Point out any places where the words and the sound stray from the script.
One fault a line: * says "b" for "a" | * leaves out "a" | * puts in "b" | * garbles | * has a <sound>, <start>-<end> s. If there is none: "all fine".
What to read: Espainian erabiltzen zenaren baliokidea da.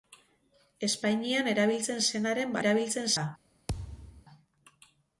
* says "erabiltzen" for "baliokidea"
* has a thud, 3.7-4.3 s